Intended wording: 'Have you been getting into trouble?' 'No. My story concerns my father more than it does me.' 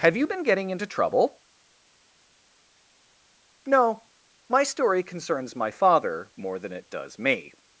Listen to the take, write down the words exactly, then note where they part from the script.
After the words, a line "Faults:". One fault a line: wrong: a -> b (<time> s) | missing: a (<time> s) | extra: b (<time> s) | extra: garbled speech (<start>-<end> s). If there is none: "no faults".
'Have you been getting into trouble?' 'No. My story concerns my father more than it does me.'
Faults:
no faults